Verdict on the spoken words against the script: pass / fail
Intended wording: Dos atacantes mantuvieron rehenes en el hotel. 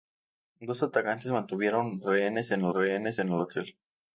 fail